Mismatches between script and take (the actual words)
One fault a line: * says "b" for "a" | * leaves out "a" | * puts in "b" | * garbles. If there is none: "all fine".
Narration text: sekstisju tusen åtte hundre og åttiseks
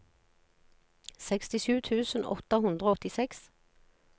all fine